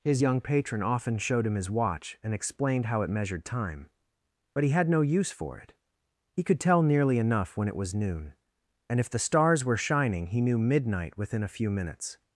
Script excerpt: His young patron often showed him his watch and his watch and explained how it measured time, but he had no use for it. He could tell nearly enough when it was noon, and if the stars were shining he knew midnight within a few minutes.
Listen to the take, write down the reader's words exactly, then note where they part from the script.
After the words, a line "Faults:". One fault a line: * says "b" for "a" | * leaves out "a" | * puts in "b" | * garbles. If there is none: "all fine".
His young patron often showed him his watch and explained how it measured time, but he had no use for it. He could tell nearly enough when it was noon, and if the stars were shining he knew midnight within a few minutes.
Faults:
* leaves out "his watch and"